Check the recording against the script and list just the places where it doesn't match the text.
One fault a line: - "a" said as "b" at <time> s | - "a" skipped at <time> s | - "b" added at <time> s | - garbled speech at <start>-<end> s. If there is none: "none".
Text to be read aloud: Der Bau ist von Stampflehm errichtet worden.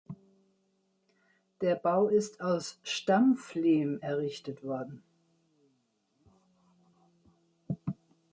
- "von" said as "aus" at 2.4 s